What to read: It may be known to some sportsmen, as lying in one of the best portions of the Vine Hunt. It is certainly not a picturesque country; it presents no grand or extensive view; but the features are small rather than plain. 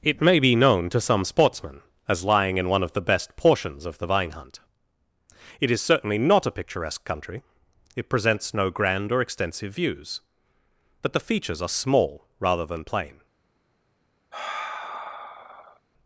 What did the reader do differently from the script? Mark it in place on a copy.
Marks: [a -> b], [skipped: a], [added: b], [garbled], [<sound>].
It may be known to some sportsmen, as lying in one of the best portions of the Vine Hunt. It is certainly not a picturesque country; it presents no grand or extensive [view; -> views] but the features are small rather than plain. [sigh]